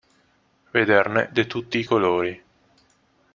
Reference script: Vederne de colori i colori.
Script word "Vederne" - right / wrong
right